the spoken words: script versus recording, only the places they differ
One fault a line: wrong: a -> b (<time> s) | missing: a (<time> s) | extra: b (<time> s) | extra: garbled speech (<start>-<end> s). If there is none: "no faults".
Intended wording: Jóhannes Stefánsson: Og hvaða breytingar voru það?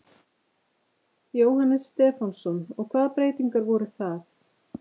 no faults